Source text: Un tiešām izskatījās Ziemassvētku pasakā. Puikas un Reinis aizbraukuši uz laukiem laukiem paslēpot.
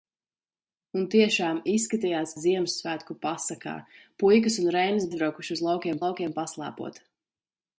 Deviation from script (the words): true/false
false